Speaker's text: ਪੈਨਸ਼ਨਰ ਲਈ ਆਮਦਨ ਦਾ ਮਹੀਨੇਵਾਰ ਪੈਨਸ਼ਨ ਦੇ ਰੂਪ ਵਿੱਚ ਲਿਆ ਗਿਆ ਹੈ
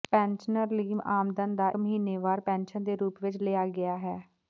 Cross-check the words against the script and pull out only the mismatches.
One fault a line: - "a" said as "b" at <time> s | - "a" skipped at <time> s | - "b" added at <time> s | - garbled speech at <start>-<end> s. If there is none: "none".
none